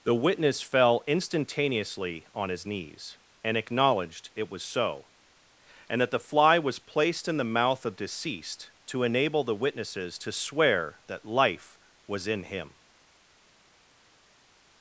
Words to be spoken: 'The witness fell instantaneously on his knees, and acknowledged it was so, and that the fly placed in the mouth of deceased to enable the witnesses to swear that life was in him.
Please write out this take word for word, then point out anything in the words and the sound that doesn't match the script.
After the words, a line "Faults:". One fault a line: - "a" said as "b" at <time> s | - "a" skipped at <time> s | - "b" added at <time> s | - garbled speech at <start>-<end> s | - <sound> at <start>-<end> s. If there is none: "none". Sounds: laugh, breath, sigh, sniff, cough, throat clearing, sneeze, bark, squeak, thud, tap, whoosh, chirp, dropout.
'The witness fell instantaneously on his knees, and acknowledged it was so, and that the fly was placed in the mouth of deceased to enable the witnesses to swear that life was in him.
Faults:
- "was" added at 6.6 s